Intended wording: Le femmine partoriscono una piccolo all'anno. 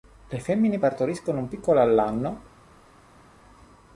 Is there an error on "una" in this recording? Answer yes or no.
yes